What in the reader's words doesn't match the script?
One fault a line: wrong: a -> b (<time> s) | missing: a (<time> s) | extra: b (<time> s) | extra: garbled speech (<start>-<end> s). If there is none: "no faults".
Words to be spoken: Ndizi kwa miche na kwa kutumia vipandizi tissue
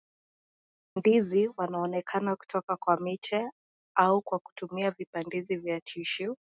extra: wanaonekana kutoka (1.6 s)
wrong: na -> au (3.9 s)
extra: vya (5.6 s)